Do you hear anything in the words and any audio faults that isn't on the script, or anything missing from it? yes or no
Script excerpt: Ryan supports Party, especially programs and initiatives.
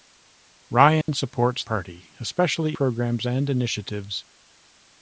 yes